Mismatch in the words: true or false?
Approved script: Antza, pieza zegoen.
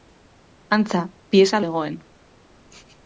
false